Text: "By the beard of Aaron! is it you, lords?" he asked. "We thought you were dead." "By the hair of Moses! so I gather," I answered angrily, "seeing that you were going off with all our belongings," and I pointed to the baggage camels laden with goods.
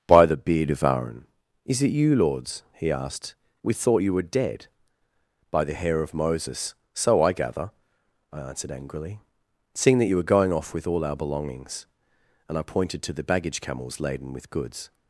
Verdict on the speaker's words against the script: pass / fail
pass